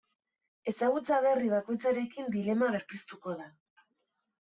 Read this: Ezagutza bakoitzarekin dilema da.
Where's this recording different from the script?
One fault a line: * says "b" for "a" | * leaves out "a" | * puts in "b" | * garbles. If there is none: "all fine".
* puts in "berri"
* puts in "berpiztuko"